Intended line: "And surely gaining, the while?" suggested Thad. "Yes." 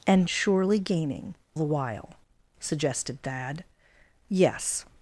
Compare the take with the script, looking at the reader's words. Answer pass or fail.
pass